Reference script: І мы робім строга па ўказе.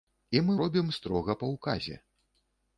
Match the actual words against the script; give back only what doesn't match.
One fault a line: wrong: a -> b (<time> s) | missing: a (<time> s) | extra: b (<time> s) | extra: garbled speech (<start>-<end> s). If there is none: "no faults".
no faults